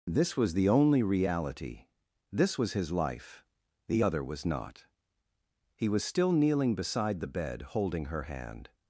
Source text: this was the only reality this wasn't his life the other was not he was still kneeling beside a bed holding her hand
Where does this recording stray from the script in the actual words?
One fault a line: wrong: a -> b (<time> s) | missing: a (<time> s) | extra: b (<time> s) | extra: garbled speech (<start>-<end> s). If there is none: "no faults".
wrong: wasn't -> was (2.6 s)
wrong: a -> the (7.2 s)